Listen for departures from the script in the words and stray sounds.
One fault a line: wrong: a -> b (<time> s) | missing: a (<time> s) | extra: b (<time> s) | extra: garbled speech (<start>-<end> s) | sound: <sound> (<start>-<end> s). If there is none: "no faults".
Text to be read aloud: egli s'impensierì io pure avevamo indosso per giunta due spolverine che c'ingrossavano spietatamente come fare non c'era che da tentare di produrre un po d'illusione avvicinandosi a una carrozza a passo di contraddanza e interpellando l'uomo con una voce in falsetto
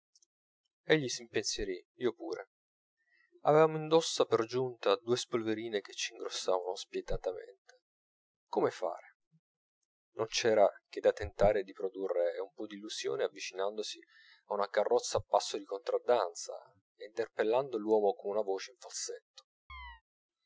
sound: chirp (19.7-20.0 s)